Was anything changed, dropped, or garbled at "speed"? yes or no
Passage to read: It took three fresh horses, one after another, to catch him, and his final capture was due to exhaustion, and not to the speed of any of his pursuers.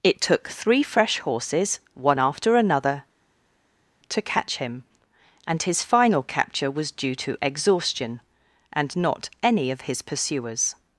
yes